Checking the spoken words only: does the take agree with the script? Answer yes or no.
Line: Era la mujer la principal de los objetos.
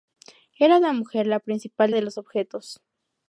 yes